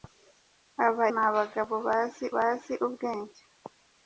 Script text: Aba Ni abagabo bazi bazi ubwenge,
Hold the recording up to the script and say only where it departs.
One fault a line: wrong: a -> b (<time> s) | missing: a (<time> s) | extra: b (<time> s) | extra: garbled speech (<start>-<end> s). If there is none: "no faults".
no faults